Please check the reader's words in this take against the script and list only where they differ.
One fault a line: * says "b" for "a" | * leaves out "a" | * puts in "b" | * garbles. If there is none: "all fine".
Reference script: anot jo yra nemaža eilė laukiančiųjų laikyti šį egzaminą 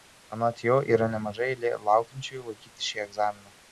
all fine